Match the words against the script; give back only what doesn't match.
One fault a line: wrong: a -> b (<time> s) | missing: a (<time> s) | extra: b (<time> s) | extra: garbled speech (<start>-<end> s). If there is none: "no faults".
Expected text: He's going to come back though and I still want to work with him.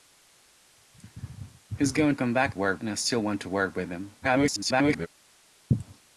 missing: to (2.1 s)
wrong: though -> work (2.5 s)
extra: garbled speech (4.2-5.1 s)